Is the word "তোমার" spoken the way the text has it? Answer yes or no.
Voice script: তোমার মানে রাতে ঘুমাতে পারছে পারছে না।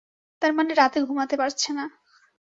no